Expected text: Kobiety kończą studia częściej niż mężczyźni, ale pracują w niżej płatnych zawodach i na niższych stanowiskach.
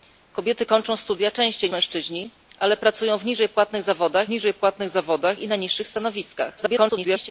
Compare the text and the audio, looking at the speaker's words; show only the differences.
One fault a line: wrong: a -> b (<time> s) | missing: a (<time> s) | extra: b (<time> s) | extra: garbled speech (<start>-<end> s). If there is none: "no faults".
missing: niż (1.7 s)
extra: niżej płatnych zawodach (4.3 s)
extra: garbled speech (6.6-7.3 s)